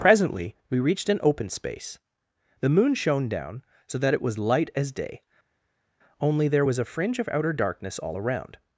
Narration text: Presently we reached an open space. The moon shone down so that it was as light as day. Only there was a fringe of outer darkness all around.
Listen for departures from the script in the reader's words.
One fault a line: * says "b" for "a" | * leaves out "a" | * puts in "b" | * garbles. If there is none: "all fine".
* leaves out "as"